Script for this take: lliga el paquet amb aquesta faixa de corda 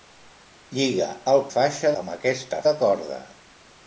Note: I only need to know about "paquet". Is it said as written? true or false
false